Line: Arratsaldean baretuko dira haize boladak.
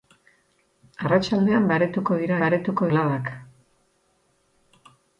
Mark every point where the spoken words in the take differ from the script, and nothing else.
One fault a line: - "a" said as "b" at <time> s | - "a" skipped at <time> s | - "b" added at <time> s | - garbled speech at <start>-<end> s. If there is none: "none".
- "haize" said as "baretuko" at 2.4 s